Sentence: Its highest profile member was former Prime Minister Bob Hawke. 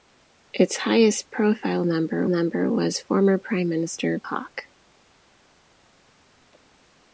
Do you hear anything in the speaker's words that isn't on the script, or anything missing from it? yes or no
yes